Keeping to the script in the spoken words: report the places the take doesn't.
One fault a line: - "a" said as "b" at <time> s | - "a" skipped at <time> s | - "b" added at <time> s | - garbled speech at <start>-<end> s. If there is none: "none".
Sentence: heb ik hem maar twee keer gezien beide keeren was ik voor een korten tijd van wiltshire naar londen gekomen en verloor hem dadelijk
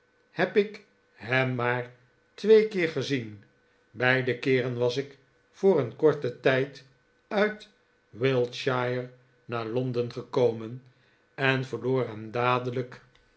- "van" said as "uit" at 7.3 s